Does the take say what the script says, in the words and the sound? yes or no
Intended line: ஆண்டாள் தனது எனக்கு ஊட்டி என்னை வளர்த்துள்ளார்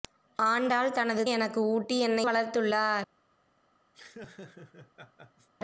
no